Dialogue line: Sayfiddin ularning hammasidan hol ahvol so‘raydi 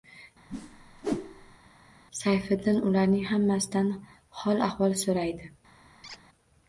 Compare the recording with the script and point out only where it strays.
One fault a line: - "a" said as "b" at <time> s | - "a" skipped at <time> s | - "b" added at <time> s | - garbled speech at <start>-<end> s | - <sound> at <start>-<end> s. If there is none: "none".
- whoosh at 0.5-1.6 s
- squeak at 6.0-6.2 s